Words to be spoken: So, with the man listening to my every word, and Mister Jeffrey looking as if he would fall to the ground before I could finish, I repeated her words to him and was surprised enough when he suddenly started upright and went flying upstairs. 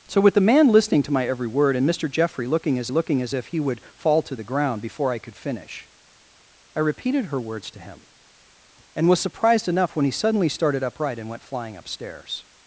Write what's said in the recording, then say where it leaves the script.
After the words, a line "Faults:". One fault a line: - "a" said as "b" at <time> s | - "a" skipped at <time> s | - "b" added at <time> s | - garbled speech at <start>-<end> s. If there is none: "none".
So, with the man listening to my every word, and Mister Jeffrey looking as looking as if he would fall to the ground before I could finish, I repeated her words to him and was surprised enough when he suddenly started upright and went flying upstairs.
Faults:
- "looking as" added at 2.9 s